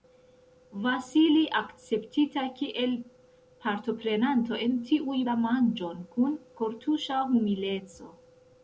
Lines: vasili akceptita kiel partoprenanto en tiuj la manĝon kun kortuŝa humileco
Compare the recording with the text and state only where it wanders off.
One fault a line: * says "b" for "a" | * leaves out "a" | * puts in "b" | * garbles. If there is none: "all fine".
all fine